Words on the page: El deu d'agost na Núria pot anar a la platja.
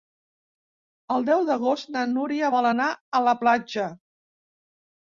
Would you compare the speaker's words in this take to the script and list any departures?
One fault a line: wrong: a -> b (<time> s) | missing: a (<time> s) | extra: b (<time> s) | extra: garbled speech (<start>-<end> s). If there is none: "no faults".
wrong: pot -> vol (2.6 s)